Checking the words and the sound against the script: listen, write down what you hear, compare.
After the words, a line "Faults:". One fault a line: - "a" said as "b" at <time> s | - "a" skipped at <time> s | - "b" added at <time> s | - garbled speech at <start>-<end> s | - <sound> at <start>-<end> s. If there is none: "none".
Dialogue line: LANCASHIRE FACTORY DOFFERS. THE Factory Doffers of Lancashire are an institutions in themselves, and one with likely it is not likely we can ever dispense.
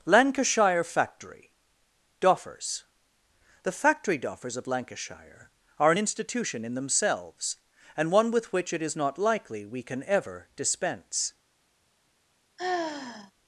LANCASHIRE FACTORY DOFFERS. THE Factory Doffers of Lancashire are an institution in themselves, and one with which it is not likely we can ever dispense.
Faults:
- "institutions" said as "institution" at 6.0 s
- "likely" said as "which" at 8.5 s
- sigh at 12.6-13.3 s